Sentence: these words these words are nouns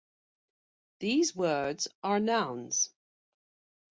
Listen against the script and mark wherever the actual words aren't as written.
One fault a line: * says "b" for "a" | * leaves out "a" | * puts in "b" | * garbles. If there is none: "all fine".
* leaves out "these words"